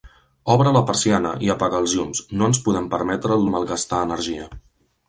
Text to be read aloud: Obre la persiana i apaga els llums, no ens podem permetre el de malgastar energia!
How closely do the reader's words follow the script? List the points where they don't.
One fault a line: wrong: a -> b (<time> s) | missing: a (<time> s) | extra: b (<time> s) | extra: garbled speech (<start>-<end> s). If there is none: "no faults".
no faults